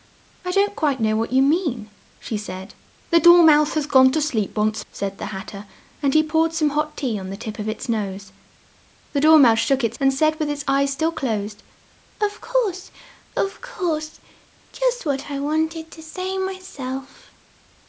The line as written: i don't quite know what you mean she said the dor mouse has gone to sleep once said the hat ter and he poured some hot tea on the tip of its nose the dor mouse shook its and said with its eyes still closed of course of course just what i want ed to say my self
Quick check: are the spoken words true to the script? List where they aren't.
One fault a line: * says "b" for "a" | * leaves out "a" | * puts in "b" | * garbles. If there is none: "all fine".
all fine